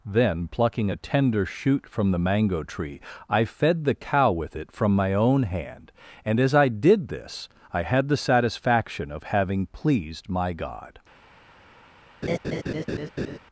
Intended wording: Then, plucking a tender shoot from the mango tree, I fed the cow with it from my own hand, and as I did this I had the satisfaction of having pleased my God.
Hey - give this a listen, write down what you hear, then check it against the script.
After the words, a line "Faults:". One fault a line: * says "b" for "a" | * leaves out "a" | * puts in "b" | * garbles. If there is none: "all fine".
Then, plucking a tender shoot from the mango tree, I fed the cow with it from my own hand, and as I did this I had the satisfaction of having pleased my God.
Faults:
all fine